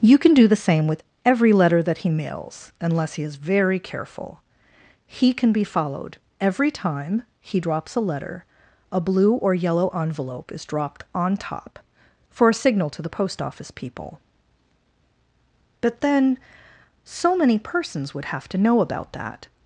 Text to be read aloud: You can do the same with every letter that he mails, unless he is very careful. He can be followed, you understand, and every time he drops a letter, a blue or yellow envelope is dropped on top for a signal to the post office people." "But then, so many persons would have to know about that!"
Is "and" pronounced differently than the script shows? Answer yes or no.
yes